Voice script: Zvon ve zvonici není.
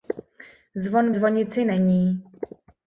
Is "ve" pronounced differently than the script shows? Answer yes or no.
yes